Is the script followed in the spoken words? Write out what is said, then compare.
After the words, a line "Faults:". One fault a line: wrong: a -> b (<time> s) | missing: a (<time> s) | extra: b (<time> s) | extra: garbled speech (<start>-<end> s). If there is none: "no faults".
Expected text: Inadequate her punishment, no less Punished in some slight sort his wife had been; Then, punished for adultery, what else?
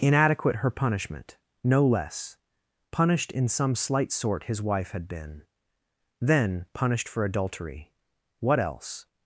Inadequate her punishment, no less Punished in some slight sort his wife had been; Then, punished for adultery, what else?
Faults:
no faults